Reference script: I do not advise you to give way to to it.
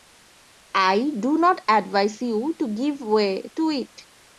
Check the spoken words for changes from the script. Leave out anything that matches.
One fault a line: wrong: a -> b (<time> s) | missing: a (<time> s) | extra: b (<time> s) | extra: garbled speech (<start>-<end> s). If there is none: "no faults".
missing: to (3.7 s)